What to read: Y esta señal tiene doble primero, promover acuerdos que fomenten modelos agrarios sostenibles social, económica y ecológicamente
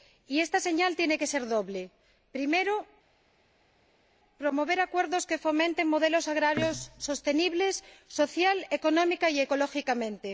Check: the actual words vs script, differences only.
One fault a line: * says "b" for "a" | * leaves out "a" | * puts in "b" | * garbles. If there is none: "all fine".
* puts in "que ser"